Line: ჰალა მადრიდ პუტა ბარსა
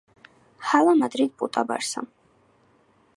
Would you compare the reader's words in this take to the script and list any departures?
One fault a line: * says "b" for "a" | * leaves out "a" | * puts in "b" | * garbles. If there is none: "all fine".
all fine